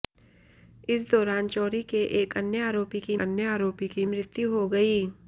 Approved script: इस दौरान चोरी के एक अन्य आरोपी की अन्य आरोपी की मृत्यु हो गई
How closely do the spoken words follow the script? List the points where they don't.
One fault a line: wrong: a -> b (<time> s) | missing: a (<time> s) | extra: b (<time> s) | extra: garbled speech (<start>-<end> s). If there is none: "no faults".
no faults